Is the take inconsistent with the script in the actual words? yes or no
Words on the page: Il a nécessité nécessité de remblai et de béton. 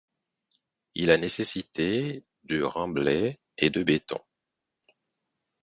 yes